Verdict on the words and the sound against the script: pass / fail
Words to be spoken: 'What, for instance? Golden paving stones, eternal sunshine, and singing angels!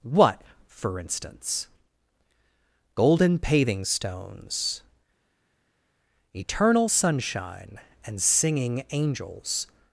pass